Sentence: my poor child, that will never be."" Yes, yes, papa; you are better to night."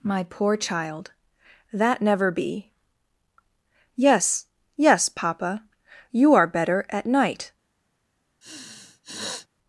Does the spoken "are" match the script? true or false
true